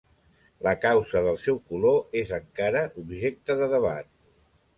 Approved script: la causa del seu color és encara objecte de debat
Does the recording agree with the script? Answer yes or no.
yes